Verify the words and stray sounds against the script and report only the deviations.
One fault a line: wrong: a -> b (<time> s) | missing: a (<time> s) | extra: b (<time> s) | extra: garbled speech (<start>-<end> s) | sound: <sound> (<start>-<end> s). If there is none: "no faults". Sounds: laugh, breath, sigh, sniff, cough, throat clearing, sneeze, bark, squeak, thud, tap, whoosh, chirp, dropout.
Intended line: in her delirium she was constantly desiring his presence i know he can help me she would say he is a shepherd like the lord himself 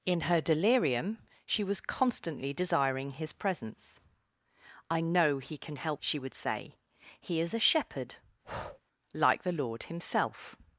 missing: me (6.0 s)
sound: breath (8.4-8.8 s)